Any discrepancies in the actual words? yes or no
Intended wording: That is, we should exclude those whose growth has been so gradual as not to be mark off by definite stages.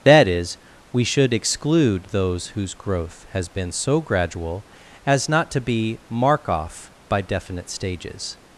no